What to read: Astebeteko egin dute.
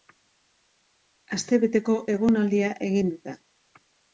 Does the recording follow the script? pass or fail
fail